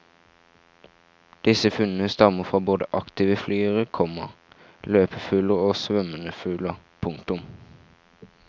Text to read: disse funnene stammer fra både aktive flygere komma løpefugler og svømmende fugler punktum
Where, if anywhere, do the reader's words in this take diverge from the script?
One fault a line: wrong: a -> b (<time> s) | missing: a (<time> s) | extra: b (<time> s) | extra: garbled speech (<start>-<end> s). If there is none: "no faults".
no faults